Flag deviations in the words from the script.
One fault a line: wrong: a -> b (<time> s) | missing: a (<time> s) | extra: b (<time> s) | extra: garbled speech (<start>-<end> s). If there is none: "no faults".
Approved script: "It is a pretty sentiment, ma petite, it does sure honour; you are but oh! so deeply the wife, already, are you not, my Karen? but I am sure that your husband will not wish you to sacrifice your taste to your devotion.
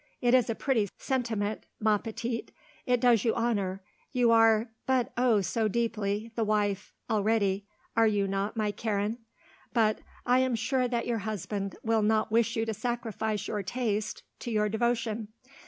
wrong: sure -> you (3.2 s)